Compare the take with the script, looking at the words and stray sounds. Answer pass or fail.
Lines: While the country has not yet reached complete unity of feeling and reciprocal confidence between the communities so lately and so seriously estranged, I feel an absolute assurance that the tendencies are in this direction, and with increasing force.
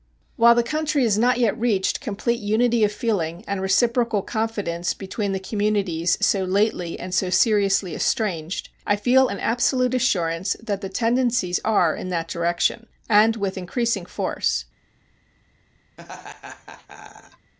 fail